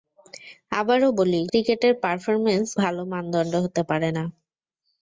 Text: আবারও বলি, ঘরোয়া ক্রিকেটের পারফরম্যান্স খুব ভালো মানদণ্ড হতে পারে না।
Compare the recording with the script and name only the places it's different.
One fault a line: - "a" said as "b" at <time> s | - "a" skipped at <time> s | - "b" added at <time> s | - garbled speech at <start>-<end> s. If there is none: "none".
- "ঘরোয়া" skipped at 1.4 s
- "খুব" skipped at 2.7 s